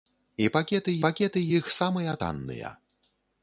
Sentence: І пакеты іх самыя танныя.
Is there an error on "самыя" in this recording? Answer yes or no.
no